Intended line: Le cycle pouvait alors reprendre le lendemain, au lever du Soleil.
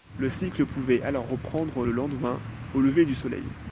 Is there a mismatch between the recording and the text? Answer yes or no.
no